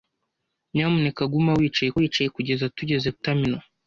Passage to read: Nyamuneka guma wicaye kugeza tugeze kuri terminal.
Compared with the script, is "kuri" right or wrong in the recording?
wrong